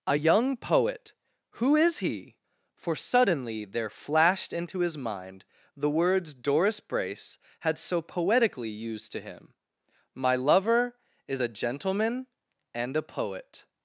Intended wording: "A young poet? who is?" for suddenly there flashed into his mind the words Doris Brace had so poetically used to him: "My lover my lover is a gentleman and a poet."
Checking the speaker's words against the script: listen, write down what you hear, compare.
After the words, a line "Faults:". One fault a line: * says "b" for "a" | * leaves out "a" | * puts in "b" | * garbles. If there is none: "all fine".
"A young poet? who is he?" for suddenly there flashed into his mind the words Doris Brace had so poetically used to him: "My lover is a gentleman and a poet."
Faults:
* puts in "he"
* leaves out "my lover"